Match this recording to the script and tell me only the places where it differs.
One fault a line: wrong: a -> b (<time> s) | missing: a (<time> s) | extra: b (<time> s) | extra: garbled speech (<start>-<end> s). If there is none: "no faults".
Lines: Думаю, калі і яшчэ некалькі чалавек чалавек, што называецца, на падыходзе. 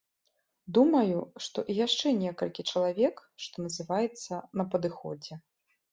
wrong: калі -> што (1.5 s)
missing: чалавек (3.1 s)